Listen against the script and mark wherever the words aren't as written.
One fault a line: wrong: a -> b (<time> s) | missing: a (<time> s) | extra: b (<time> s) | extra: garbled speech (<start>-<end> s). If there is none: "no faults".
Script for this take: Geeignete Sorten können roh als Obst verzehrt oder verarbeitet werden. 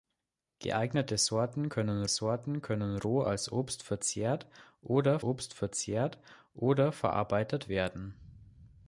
extra: Sorten können (2.1 s)
extra: Obst verzehrt oder (5.2 s)